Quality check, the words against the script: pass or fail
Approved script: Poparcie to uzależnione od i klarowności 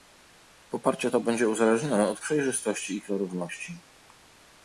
fail